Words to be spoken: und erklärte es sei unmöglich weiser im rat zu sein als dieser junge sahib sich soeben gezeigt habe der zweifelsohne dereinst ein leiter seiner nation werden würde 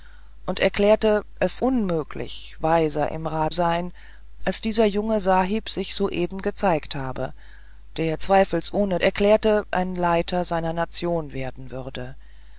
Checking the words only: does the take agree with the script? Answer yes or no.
no